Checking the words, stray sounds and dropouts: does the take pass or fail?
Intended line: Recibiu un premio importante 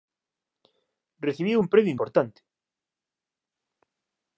pass